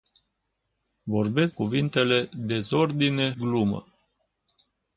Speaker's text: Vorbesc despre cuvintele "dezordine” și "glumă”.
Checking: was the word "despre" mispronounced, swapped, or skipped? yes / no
yes